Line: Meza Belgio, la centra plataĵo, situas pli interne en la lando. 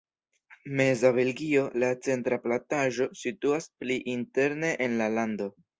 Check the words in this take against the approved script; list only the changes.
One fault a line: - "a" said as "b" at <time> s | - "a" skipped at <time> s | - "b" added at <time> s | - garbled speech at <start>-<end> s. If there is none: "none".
none